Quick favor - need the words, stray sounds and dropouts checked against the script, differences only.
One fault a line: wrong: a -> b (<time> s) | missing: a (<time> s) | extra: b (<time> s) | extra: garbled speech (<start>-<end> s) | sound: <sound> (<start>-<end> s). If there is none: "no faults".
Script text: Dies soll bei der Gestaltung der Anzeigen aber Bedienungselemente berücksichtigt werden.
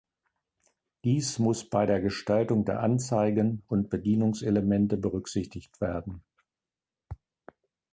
wrong: soll -> muss (1.4 s)
wrong: aber -> und (3.7 s)